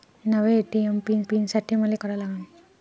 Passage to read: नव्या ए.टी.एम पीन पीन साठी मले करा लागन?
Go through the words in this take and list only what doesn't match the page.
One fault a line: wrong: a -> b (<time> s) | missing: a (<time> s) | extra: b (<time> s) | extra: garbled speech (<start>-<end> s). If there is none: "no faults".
no faults